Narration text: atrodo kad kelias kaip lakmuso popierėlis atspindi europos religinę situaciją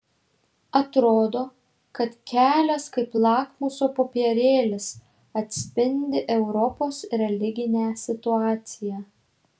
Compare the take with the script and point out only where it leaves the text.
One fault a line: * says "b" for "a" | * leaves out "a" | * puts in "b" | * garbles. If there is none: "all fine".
all fine